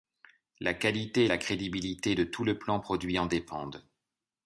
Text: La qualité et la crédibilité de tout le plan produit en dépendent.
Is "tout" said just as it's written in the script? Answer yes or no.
yes